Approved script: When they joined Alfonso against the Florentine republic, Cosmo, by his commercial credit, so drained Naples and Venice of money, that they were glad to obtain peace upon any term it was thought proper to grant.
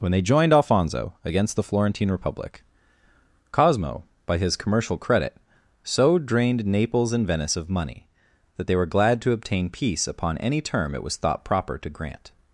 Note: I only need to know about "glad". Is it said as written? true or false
true